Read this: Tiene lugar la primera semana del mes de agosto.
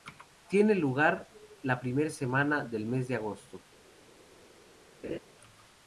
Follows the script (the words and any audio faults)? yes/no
no